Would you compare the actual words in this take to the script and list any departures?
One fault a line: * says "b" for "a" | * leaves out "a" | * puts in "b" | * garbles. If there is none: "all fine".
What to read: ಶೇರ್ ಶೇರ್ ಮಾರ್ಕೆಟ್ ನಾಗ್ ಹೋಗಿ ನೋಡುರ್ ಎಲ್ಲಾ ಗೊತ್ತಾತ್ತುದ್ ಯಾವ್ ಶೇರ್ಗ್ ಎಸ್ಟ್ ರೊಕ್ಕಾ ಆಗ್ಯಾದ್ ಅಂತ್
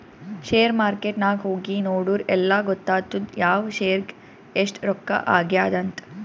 * leaves out "ಶೇರ್"